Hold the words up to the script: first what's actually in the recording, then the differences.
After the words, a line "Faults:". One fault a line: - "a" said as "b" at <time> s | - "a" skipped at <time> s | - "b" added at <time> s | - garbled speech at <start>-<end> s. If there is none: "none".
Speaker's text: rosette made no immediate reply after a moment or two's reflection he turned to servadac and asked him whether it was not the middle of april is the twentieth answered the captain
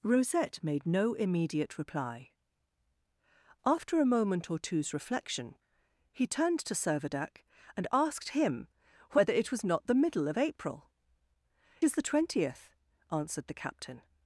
rosette made no immediate reply after a moment or two's reflection he turned to servadac and asked him whether it was not the middle of april is the twentieth answered the captain
Faults:
none